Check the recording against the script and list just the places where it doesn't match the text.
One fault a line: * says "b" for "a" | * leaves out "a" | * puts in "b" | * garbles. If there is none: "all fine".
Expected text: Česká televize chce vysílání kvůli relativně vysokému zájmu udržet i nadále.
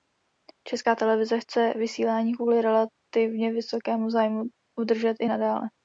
all fine